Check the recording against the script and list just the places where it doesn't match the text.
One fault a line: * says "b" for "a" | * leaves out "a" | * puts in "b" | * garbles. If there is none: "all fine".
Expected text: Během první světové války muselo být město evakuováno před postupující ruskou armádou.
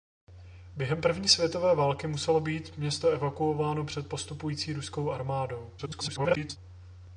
* garbles